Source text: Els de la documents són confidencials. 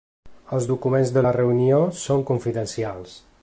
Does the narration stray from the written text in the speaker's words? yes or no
yes